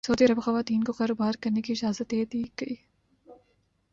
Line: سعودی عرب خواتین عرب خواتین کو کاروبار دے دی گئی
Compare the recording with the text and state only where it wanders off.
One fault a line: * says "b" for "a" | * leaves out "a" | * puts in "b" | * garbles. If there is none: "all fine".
* says "کو کاروبار کرنے کی اجازت" for "عرب خواتین کو کاروبار"